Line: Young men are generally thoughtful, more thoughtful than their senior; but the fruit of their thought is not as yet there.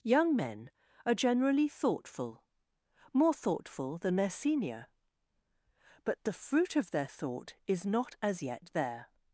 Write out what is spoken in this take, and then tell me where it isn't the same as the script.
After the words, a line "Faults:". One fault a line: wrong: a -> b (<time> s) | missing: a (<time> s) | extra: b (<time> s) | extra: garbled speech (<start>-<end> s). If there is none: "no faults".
Young men are generally thoughtful, more thoughtful than their senior; but the fruit of their thought is not as yet there.
Faults:
no faults